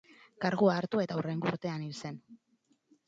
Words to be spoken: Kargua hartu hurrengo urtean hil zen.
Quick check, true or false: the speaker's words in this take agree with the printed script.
false